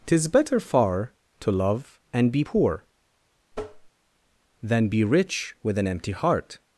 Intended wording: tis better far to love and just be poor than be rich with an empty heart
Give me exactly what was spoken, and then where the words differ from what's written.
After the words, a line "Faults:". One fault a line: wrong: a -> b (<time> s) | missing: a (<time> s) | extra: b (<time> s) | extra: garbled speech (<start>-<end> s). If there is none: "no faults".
tis better far to love and be poor than be rich with an empty heart
Faults:
missing: just (2.3 s)